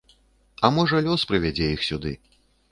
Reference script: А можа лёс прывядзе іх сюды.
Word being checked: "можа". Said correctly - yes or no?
yes